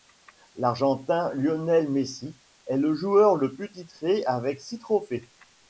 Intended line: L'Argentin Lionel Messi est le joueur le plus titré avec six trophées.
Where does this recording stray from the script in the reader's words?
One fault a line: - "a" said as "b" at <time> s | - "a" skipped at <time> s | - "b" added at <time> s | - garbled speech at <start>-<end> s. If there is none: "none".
none